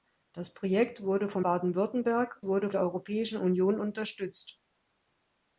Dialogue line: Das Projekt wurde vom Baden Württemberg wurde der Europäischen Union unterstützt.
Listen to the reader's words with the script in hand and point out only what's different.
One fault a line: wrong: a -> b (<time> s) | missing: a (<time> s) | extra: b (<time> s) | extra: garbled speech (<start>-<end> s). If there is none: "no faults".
no faults